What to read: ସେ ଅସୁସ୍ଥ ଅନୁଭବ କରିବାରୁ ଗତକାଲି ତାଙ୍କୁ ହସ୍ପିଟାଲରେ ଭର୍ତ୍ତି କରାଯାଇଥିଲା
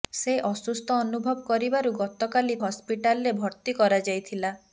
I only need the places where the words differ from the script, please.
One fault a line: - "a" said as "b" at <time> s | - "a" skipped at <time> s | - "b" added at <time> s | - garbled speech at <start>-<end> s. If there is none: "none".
- "ତାଙ୍କୁ" skipped at 2.6 s